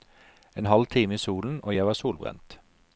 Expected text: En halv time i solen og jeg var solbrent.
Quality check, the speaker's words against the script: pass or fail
pass